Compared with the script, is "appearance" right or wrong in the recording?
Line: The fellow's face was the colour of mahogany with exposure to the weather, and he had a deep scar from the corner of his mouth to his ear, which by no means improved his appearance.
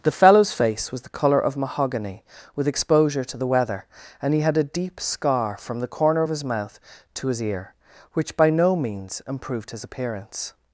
right